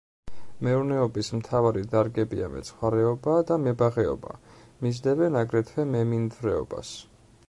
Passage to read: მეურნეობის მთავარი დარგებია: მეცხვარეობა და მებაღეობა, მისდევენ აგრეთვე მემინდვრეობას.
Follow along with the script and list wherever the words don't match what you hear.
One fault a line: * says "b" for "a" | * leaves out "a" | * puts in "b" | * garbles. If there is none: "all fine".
all fine